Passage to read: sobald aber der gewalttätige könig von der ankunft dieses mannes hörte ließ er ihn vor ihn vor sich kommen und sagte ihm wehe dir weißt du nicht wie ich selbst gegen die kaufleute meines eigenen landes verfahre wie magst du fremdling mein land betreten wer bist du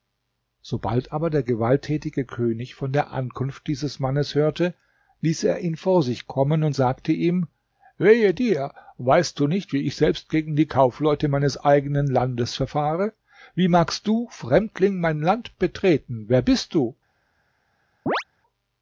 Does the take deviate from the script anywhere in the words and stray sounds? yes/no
yes